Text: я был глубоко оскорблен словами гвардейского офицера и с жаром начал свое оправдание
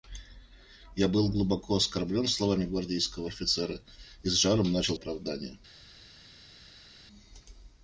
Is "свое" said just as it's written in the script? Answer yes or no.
no